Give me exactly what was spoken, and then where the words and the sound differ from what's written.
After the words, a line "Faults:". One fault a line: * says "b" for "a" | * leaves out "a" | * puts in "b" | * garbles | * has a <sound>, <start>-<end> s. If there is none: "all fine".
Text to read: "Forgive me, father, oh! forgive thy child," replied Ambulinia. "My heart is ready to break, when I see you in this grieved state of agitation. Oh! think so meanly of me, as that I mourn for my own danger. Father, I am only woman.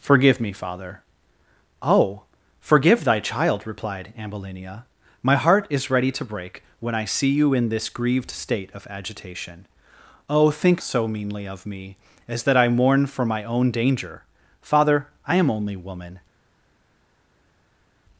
"Forgive me, father, oh! forgive thy child," replied Ambulinia. "My heart is ready to break, when I see you in this grieved state of agitation. Oh! think so meanly of me, as that I mourn for my own danger. Father, I am only woman.
Faults:
all fine